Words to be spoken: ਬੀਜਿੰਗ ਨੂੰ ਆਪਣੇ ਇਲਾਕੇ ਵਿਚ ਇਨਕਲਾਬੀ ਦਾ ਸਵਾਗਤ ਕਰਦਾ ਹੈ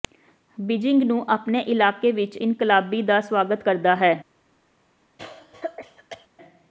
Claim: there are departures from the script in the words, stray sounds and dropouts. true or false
true